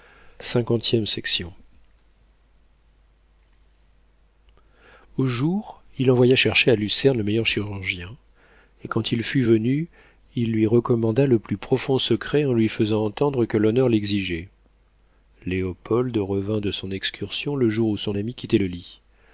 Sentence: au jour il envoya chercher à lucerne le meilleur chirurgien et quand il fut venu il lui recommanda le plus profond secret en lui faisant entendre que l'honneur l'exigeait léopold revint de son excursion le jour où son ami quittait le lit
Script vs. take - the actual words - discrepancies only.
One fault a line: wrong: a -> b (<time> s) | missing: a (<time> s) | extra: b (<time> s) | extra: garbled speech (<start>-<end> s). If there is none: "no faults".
no faults